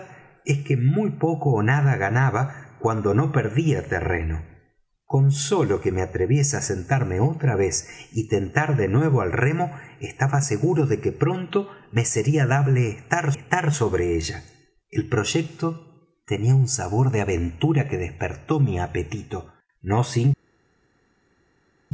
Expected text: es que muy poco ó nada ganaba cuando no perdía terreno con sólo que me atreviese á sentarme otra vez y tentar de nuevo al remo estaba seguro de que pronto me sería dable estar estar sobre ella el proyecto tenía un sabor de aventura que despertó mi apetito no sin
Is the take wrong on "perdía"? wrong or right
right